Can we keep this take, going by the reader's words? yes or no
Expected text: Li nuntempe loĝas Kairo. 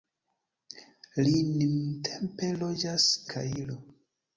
yes